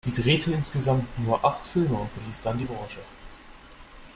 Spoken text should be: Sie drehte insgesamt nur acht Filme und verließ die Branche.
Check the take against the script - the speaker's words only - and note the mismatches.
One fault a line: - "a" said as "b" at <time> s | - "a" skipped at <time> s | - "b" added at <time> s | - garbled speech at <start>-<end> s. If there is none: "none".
- "dann" added at 2.4 s